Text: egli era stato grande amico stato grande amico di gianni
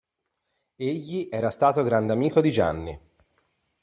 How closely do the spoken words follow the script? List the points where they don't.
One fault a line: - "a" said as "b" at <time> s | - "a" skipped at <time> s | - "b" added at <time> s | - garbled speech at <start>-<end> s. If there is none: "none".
- "stato grande amico" skipped at 2.4 s